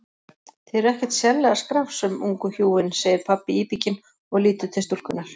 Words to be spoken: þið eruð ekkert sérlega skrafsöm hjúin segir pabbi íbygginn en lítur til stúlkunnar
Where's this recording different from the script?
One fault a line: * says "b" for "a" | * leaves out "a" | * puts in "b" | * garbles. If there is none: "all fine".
* puts in "ungu"
* says "og" for "en"